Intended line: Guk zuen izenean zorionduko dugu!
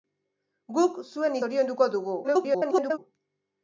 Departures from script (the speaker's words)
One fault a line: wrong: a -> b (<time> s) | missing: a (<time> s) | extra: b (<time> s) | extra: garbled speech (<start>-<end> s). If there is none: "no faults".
missing: izenean (1.4 s)
extra: garbled speech (2.2-3.0 s)